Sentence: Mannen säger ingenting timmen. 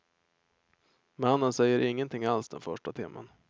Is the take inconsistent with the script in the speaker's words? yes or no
yes